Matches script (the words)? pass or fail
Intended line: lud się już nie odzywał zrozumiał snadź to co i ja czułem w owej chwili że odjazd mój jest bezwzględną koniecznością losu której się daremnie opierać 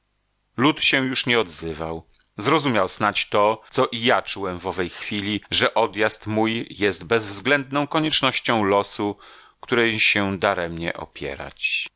pass